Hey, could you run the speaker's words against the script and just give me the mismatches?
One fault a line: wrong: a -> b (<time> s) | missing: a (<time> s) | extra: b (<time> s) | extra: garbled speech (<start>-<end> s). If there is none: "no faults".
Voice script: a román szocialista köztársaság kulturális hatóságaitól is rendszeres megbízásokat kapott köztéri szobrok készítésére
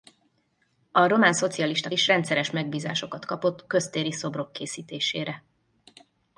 missing: köztársaság kulturális hatóságaitól (1.9 s)